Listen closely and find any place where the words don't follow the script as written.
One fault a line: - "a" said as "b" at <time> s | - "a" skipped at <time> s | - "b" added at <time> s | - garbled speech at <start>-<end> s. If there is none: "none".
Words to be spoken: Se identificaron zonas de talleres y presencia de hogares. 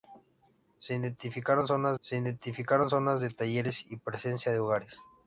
- "se identificaron zonas" added at 2.0 s